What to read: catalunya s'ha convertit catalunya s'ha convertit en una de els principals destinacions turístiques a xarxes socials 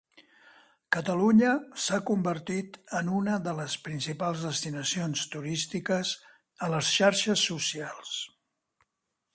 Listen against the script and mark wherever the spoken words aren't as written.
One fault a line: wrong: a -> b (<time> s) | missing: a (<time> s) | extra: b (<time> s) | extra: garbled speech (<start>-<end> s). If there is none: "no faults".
missing: catalunya s'ha convertit (2.8 s)
wrong: els -> les (3.6 s)
extra: les (6.8 s)